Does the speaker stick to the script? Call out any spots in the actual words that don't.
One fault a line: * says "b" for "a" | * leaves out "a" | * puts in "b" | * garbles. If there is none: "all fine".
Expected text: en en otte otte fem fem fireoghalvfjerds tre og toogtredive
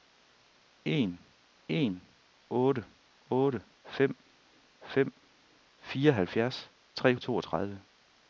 all fine